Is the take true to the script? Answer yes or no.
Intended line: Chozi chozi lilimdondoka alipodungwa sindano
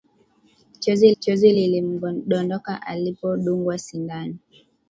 yes